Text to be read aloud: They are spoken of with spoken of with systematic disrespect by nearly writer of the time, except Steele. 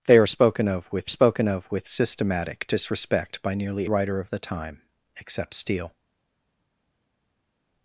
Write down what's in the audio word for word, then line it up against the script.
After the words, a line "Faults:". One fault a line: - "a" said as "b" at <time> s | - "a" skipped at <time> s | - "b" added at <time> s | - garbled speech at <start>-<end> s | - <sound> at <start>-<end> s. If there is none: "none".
They are spoken of with spoken of with systematic disrespect by nearly writer of the time, except Steele.
Faults:
none